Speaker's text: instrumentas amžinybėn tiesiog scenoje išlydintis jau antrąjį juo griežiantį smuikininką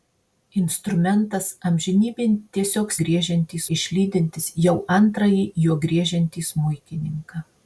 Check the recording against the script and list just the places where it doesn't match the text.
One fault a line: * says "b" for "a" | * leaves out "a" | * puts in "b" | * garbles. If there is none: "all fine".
* says "griežiantį" for "scenoje"